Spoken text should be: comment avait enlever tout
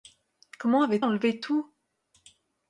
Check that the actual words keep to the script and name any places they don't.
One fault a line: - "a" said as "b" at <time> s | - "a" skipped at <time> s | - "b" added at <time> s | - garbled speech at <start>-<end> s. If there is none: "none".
none